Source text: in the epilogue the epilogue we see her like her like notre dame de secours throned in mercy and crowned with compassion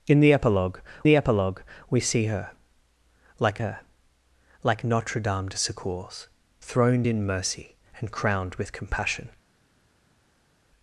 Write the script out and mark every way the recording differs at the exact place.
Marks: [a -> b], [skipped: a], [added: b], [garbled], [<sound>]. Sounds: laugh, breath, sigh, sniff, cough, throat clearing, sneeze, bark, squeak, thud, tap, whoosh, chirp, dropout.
in the epilogue the epilogue we see her like her like notre dame de secours throned in mercy and crowned with compassion